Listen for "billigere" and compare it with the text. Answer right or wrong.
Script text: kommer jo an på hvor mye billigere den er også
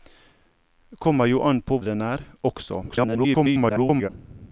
wrong